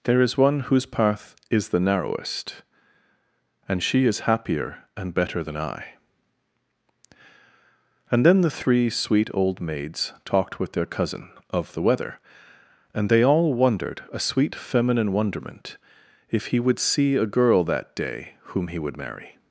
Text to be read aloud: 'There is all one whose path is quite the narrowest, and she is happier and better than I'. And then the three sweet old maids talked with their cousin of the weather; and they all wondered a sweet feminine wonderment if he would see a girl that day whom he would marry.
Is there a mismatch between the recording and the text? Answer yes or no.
yes